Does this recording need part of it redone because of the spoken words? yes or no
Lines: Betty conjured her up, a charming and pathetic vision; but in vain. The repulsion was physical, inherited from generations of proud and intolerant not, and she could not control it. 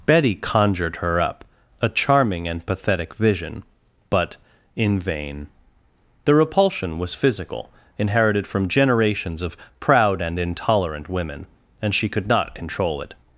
yes